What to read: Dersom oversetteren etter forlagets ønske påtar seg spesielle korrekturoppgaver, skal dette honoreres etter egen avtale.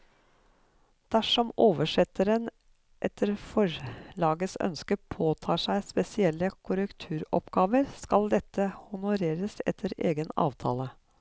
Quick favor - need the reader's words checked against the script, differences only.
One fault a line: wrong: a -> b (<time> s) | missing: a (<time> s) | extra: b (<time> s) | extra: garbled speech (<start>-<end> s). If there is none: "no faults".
no faults